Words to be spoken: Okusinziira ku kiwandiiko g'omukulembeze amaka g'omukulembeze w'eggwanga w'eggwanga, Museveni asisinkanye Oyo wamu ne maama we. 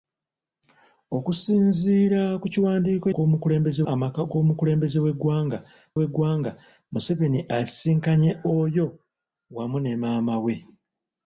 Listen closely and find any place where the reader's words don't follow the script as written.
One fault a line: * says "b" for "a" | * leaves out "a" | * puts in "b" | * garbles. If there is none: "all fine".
all fine